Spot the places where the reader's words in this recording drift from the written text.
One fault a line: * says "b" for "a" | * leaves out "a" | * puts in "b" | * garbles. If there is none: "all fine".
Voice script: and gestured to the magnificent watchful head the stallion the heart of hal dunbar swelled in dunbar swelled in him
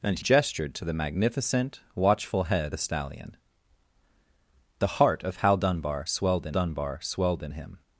all fine